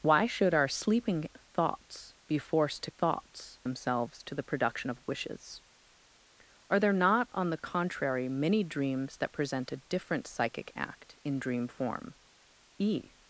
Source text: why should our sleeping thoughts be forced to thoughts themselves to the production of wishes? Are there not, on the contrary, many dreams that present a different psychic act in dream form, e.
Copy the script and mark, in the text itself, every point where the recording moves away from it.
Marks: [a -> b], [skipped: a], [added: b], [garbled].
why should our sleeping thoughts be forced to thoughts themselves to the production of wishes? Are there not, on the contrary, many dreams that present a different psychic act in dream form, e.